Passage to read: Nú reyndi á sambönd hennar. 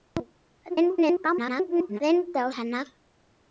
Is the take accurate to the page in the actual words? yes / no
no